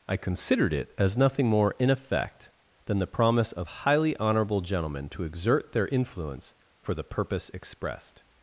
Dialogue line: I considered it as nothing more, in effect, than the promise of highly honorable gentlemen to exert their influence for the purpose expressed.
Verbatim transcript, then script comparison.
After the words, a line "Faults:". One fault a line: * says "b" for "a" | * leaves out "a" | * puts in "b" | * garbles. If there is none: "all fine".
I considered it as nothing more, in effect, than the promise of highly honorable gentlemen to exert their influence for the purpose expressed.
Faults:
all fine